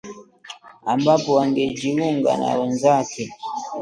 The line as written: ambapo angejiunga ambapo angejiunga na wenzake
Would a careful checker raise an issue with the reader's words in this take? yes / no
yes